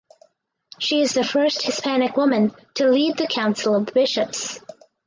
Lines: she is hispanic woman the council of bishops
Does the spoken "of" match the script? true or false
true